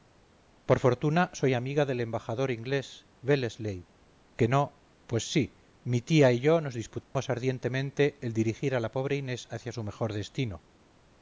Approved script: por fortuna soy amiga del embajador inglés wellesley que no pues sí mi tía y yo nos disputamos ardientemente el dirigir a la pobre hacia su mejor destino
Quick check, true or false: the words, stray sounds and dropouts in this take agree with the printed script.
false